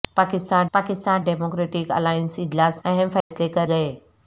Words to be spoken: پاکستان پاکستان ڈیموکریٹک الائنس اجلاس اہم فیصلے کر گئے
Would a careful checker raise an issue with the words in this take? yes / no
no